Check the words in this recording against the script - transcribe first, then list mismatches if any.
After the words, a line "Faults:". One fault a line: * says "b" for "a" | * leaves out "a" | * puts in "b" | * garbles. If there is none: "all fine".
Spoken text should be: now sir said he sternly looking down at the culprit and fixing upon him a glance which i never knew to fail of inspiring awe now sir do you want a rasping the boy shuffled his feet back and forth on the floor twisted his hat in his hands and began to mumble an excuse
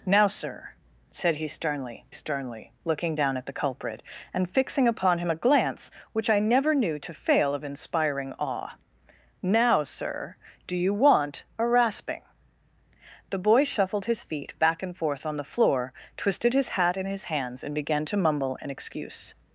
now sir said he sternly sternly looking down at the culprit and fixing upon him a glance which i never knew to fail of inspiring awe now sir do you want a rasping the boy shuffled his feet back and forth on the floor twisted his hat in his hands and began to mumble an excuse
Faults:
* puts in "sternly"